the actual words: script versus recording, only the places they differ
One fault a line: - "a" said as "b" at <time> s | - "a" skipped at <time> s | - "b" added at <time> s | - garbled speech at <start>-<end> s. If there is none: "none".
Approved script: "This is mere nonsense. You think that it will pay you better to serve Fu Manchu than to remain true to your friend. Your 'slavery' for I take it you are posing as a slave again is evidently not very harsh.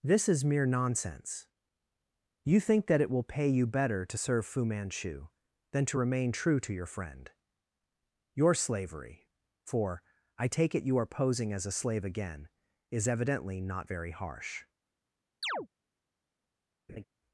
none